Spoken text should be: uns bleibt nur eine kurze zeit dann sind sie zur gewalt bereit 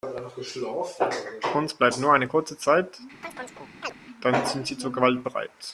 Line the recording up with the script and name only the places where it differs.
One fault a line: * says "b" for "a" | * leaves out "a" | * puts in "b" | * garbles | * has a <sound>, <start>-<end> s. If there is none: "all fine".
* has a chirp, 3.2-3.9 s